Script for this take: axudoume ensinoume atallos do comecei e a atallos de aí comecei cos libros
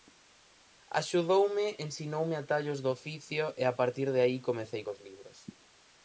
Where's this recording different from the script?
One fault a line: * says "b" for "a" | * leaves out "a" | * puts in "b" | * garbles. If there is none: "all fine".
* says "oficio" for "comecei"
* says "partir" for "atallos"